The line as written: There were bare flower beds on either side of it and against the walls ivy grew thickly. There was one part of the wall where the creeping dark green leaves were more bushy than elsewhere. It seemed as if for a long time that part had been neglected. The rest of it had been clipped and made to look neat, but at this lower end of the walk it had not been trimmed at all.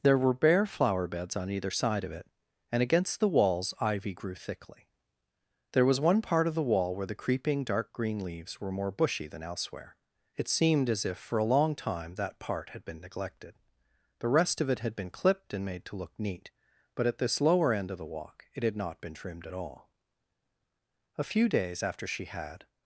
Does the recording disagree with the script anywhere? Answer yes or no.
yes